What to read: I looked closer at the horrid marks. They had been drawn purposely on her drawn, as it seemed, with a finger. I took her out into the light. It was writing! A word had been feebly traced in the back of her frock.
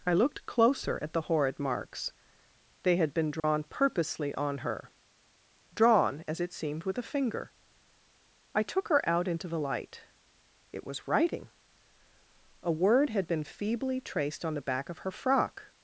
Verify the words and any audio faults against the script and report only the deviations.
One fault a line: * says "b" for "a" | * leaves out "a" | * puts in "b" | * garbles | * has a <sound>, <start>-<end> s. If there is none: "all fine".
* has a dropout, 3.4-3.4 s
* says "on" for "in"